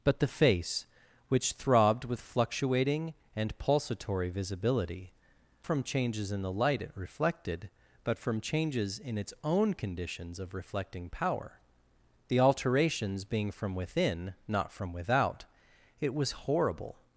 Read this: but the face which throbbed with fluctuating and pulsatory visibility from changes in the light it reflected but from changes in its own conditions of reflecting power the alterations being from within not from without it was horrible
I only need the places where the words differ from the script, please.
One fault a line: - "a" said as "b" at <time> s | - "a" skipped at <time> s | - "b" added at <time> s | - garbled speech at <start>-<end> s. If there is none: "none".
none